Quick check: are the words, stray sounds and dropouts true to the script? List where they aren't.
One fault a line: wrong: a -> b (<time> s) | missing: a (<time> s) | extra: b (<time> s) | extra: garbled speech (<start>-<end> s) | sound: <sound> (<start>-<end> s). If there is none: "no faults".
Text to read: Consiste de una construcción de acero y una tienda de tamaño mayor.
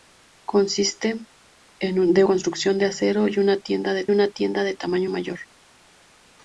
missing: una (2.2 s)
extra: una tienda de (4.1 s)